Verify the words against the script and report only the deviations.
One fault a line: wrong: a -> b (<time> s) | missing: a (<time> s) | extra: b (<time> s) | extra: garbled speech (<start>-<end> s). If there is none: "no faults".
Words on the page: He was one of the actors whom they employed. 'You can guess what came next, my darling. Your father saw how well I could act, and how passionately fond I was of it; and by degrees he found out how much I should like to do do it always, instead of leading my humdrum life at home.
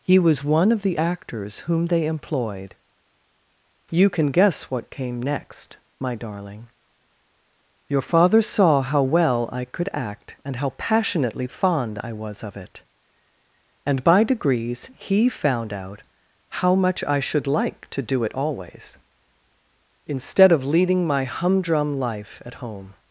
missing: do (18.2 s)